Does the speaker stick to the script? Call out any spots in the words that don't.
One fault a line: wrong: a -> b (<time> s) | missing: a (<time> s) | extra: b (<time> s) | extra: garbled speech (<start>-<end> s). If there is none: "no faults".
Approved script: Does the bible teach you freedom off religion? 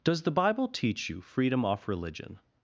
no faults